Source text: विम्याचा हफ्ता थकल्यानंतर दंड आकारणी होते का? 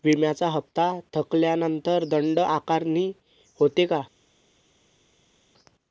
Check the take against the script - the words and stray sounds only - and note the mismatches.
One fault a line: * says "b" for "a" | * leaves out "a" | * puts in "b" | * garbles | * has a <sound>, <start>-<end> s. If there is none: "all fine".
all fine